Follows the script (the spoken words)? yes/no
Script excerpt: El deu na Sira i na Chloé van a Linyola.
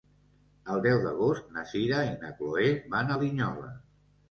no